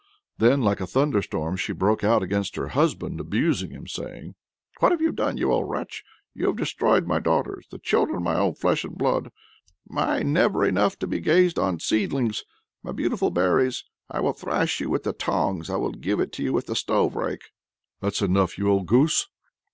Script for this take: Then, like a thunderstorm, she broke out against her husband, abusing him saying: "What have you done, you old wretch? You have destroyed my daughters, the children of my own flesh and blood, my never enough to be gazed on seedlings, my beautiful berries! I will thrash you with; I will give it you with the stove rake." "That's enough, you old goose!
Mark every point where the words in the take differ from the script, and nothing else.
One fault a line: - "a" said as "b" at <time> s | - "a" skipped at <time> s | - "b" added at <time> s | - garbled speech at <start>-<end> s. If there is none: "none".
- "the tongs" added at 15.0 s